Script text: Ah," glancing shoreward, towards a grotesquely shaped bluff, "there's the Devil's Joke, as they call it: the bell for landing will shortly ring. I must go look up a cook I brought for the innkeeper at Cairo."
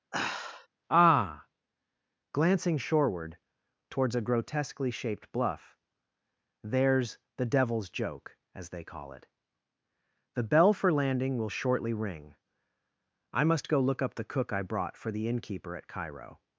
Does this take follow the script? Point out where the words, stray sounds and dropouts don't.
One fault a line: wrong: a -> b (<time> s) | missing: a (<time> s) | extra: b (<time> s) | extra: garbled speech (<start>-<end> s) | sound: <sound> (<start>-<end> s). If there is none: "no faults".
sound: sigh (0.1-0.7 s)
wrong: a -> the (14.1 s)